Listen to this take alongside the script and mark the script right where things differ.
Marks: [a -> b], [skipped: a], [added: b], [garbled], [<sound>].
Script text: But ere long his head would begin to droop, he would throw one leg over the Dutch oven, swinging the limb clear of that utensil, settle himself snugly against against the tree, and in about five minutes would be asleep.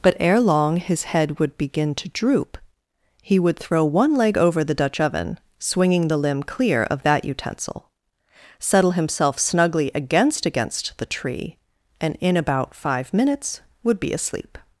But ere long his head would begin to droop, he would throw one leg over the Dutch oven, swinging the limb clear of that utensil, settle himself snugly against against the tree, and in about five minutes would be asleep.